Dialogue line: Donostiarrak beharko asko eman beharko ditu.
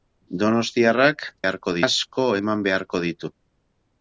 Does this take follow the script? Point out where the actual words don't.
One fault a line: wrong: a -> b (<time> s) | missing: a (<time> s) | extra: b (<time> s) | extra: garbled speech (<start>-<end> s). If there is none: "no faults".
no faults